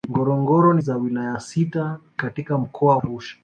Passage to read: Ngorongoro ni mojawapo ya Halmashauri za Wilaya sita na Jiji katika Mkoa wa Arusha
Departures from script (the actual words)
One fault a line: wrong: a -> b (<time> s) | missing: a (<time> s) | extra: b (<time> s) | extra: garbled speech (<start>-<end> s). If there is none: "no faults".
missing: mojawapo ya Halmashauri (0.8 s)
missing: na Jiji (2.0 s)
missing: wa (3.0 s)